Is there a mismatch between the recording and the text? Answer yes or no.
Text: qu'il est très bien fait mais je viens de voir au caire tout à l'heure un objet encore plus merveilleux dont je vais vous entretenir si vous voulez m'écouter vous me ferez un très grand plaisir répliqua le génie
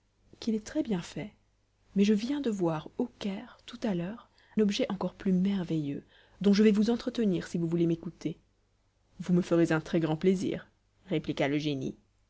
yes